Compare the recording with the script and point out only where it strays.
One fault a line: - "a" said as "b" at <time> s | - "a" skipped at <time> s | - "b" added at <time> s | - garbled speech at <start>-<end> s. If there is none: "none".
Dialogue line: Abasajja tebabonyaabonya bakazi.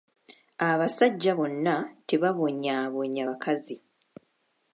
- "bonna" added at 1.4 s